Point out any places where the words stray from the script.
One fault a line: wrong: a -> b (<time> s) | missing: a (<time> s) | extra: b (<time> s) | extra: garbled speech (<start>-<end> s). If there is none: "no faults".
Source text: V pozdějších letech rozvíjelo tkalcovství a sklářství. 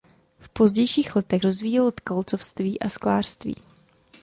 no faults